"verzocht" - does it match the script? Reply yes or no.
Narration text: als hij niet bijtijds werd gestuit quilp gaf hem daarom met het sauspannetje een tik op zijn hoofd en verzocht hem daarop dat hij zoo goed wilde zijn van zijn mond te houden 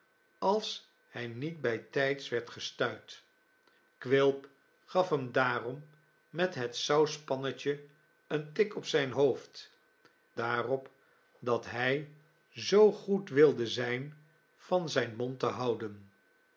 no